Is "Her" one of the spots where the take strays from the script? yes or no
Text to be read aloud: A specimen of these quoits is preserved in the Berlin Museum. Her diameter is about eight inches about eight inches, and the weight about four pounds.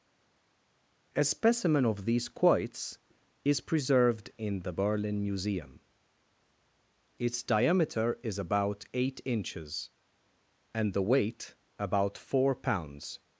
yes